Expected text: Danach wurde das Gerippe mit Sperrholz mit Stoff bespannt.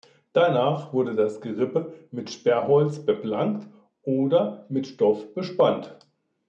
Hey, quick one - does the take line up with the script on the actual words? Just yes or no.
no